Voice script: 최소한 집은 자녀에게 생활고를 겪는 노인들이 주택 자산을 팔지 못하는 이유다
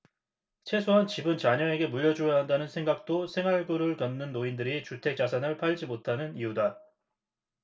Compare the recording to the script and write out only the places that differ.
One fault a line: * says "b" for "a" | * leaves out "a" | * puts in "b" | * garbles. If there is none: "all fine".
* puts in "물려줘야 한다는 생각도"